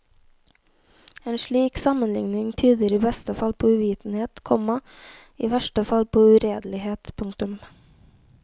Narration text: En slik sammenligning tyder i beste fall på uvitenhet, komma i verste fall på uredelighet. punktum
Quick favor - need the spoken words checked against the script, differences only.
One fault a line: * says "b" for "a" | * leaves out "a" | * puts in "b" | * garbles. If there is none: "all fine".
all fine